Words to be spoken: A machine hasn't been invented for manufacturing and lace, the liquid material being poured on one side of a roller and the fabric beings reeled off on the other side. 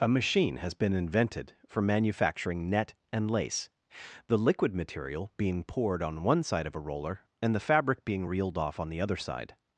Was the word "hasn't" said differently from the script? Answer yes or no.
yes